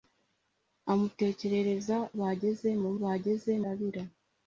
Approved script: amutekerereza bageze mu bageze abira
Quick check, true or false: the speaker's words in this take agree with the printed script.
true